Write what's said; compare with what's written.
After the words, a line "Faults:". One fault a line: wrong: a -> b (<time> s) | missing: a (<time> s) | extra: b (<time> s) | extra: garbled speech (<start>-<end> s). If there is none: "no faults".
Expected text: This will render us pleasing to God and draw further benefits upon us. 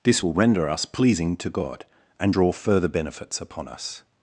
This will render us pleasing to God and draw further benefits upon us.
Faults:
no faults